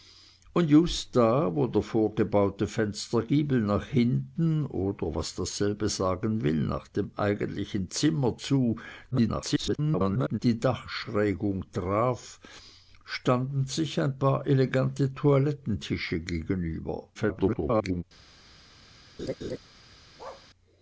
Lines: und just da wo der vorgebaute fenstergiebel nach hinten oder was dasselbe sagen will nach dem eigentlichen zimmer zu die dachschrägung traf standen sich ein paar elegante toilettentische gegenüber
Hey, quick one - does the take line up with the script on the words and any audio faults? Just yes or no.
no